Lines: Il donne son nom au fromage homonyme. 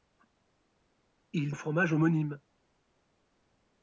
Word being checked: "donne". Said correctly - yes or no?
no